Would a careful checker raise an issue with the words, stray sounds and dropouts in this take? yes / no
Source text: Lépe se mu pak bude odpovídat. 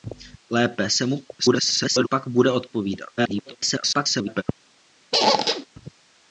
yes